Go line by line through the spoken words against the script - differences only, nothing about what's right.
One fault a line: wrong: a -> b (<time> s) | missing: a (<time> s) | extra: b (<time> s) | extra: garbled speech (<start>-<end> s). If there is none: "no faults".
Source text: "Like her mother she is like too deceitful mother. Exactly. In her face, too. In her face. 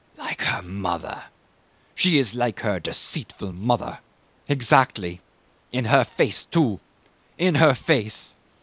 wrong: too -> her (2.6 s)